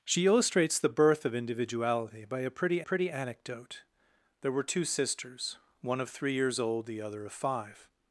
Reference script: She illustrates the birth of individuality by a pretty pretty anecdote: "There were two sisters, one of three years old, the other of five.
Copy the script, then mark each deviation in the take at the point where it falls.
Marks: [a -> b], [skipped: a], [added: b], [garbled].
She illustrates the birth of individuality by a pretty pretty anecdote: "There were two sisters, one of three years old, the other of five.